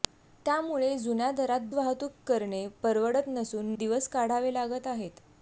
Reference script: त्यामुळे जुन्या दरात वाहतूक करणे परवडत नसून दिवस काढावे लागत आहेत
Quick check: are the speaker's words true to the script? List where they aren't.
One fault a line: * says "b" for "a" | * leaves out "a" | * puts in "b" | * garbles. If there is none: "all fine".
all fine